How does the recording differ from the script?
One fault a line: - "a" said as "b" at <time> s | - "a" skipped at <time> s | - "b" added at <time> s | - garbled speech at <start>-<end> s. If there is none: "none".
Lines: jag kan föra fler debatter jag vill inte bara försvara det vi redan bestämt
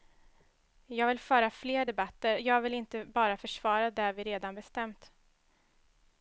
- "kan" said as "vill" at 1.1 s